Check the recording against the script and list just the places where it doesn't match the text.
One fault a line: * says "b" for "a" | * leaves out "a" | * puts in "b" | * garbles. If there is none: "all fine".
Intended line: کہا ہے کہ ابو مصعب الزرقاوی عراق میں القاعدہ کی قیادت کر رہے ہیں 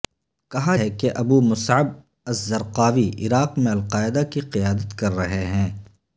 all fine